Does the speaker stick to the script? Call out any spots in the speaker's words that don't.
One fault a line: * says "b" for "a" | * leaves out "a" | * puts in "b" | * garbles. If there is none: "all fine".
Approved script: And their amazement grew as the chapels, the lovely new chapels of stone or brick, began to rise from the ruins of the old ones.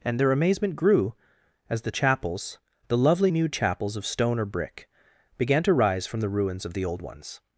all fine